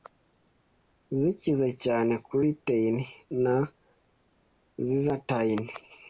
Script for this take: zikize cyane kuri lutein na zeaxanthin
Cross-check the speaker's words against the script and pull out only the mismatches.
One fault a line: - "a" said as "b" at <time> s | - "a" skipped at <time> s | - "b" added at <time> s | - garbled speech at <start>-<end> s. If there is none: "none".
none